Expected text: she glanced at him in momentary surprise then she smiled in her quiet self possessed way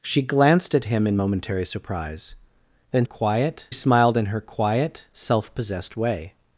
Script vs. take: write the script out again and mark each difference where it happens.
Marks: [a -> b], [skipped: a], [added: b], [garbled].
she glanced at him in momentary surprise then [she -> quiet] smiled in her quiet self possessed way